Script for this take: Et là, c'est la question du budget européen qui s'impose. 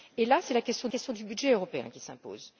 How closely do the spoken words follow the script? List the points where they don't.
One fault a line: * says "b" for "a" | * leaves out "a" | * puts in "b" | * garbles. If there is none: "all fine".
* puts in "question"